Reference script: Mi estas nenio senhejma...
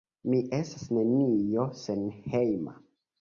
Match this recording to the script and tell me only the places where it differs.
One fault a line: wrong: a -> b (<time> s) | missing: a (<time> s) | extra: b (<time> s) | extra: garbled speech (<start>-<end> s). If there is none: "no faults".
no faults